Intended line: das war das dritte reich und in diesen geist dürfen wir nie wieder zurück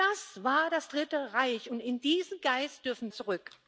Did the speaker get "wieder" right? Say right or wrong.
wrong